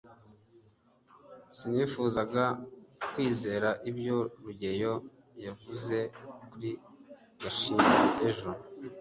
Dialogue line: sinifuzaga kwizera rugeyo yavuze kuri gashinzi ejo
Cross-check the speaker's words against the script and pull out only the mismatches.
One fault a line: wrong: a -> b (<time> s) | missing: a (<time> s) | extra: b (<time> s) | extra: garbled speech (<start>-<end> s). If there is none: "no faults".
extra: ibyo (3.9 s)